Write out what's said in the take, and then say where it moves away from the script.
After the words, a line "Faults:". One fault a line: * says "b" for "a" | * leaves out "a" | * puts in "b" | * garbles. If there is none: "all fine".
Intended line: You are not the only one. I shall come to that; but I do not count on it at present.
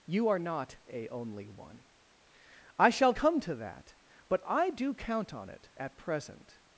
You are not a only one. I shall come to that; but I do count on it at present.
Faults:
* says "a" for "the"
* leaves out "not"